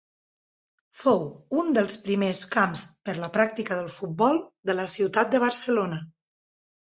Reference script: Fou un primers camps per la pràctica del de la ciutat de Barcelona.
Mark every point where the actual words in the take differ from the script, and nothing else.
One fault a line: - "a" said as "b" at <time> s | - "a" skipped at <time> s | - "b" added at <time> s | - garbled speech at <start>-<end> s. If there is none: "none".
- "dels" added at 1.8 s
- "futbol" added at 4.0 s